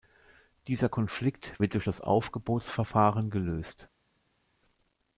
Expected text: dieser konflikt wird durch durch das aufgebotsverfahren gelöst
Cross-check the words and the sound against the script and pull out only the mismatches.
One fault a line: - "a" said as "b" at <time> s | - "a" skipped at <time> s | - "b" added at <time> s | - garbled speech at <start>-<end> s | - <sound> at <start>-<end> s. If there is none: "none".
- "durch" skipped at 1.9 s